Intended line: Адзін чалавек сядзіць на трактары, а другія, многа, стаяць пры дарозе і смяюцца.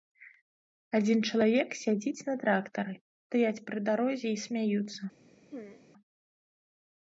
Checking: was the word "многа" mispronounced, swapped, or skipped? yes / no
yes